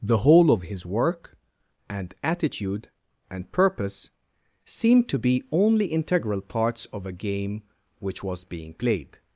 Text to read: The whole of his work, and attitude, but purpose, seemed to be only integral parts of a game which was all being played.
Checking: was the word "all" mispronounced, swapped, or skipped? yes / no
yes